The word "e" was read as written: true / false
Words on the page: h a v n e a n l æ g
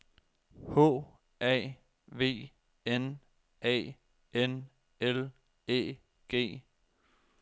false